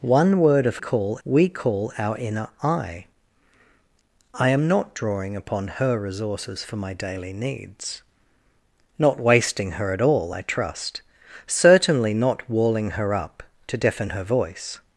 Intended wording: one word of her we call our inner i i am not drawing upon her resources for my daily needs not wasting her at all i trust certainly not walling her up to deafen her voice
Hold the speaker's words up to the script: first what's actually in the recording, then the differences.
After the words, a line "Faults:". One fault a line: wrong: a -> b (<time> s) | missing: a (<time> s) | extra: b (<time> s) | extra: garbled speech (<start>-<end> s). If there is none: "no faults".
one word of call we call our inner i i am not drawing upon her resources for my daily needs not wasting her at all i trust certainly not walling her up to deafen her voice
Faults:
wrong: her -> call (0.8 s)